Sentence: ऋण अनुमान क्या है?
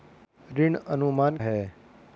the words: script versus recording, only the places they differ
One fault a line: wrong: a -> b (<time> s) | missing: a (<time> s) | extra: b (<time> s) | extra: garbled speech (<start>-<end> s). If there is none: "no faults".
missing: क्या (1.4 s)